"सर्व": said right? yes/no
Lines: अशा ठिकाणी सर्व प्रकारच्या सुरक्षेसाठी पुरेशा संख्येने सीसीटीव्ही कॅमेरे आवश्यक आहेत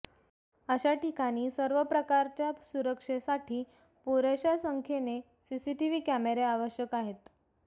yes